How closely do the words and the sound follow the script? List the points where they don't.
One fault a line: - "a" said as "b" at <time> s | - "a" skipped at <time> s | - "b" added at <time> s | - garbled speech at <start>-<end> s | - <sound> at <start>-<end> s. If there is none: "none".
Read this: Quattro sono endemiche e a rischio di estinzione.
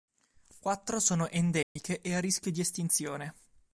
- dropout at 1.6-1.8 s